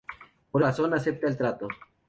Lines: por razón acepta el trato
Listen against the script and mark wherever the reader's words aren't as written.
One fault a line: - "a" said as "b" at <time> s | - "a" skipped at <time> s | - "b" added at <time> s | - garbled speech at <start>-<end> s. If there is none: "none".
none